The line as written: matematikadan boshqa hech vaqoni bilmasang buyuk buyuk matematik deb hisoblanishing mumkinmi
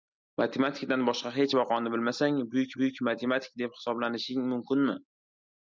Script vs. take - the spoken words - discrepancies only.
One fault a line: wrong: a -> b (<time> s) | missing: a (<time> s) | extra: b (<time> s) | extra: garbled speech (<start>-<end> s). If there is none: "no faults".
no faults